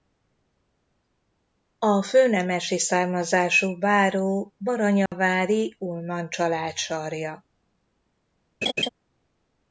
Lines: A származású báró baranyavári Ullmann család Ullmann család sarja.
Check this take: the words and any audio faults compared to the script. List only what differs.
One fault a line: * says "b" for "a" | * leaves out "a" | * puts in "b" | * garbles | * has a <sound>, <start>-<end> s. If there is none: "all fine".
* puts in "főnemesi"
* has a dropout, 5.1-5.1 s
* leaves out "Ullmann család"
* has a laugh, 8.6-8.9 s